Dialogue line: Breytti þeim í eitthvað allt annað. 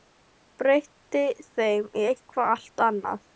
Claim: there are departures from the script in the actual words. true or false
false